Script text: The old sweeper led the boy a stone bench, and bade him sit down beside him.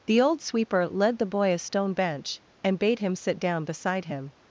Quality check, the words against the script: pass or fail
pass